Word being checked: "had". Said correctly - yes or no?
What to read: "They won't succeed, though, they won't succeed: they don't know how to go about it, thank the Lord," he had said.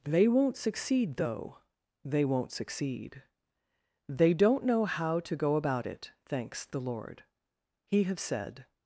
no